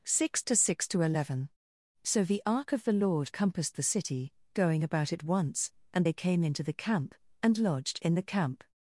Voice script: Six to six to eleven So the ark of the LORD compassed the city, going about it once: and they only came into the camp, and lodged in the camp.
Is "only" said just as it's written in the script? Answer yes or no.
no